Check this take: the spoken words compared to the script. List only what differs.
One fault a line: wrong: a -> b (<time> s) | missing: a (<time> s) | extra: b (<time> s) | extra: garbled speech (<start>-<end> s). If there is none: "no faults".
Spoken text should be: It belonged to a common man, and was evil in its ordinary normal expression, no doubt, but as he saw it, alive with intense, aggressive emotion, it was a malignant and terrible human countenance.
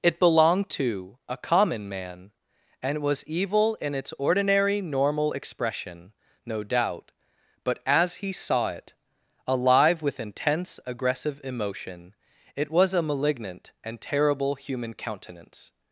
no faults